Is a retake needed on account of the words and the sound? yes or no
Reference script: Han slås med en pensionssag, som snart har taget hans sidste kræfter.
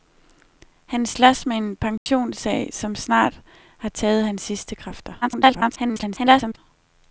yes